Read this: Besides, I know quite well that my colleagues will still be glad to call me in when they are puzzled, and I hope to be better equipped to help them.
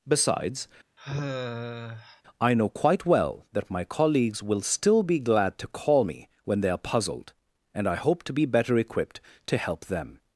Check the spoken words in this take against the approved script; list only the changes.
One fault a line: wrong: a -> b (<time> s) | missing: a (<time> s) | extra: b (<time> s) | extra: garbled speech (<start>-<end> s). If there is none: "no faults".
missing: in (6.3 s)